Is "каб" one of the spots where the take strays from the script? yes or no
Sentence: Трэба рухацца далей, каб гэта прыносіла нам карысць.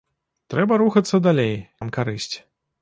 yes